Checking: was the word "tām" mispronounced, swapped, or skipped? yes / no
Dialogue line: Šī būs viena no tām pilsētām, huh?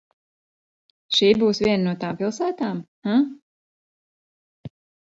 no